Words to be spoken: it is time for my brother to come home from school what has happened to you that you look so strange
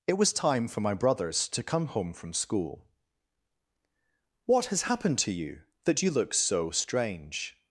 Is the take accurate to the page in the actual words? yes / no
no